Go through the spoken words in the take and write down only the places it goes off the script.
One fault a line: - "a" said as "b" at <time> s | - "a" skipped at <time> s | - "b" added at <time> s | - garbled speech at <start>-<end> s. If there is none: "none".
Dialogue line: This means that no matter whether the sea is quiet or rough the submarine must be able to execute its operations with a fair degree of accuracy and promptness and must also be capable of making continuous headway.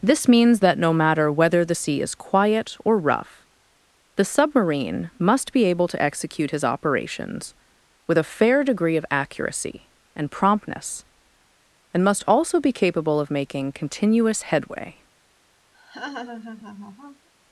- "its" said as "his" at 6.5 s